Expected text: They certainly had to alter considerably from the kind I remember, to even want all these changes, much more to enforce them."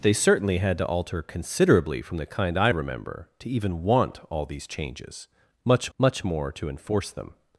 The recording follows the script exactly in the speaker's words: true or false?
false